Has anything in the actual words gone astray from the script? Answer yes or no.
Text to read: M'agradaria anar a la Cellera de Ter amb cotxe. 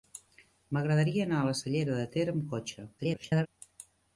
yes